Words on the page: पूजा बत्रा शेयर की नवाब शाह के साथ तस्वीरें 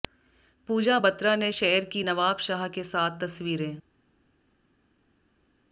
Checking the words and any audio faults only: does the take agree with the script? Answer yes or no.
no